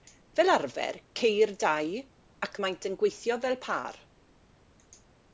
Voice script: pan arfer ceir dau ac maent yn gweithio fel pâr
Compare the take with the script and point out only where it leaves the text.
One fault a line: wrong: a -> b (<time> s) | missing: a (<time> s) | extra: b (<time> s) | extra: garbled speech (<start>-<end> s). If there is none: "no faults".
wrong: pan -> fel (0.4 s)